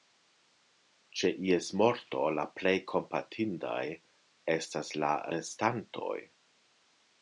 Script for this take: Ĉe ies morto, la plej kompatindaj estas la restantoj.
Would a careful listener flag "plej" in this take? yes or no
no